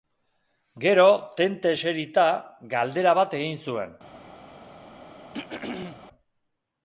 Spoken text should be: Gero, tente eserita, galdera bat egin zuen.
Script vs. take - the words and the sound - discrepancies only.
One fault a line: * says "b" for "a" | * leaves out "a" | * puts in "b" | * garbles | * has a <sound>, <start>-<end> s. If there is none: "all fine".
* has a throat clearing, 5.3-6.0 s